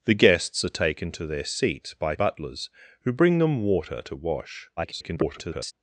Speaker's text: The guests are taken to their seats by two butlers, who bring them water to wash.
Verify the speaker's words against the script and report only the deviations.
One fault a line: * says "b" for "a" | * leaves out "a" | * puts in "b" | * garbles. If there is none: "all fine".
* leaves out "two"
* garbles